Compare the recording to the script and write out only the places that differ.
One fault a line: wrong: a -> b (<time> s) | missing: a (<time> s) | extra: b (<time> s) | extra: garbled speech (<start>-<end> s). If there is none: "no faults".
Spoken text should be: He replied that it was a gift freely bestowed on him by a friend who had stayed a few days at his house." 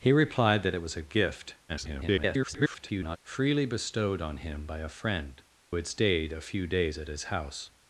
extra: garbled speech (1.7-3.2 s)
missing: who (5.4 s)